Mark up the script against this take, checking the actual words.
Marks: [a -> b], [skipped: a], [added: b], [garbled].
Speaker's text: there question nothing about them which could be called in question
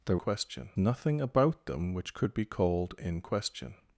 there question nothing about them which could be called in question